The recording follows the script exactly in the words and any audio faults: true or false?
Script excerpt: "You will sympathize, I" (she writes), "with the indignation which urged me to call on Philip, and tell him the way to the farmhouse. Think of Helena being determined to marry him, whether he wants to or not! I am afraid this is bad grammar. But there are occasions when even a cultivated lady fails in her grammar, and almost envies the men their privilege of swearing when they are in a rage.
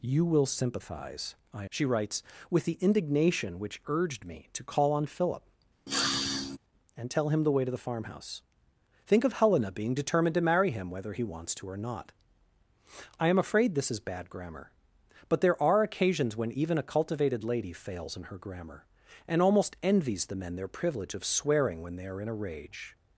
false